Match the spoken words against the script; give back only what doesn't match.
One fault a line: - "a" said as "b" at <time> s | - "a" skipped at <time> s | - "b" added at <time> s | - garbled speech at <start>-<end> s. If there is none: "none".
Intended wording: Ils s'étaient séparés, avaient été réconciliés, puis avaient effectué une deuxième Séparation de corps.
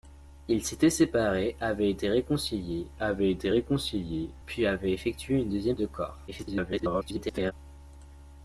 - "avaient été réconciliés" added at 3.0 s
- "Séparation" skipped at 5.8 s
- garbled speech at 6.3-7.5 s